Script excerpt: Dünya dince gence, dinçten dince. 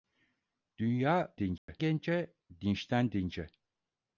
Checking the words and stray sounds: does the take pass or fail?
fail